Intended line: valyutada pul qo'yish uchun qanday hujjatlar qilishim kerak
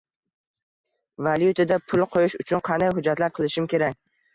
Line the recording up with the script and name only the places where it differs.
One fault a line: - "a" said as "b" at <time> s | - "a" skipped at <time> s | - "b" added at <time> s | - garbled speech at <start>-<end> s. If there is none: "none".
none